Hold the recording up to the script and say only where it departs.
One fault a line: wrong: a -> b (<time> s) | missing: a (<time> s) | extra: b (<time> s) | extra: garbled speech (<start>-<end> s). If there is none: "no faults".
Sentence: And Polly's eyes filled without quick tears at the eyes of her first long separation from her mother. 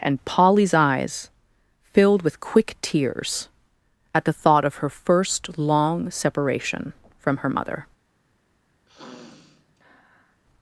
wrong: without -> with (2.2 s)
wrong: eyes -> thought (4.3 s)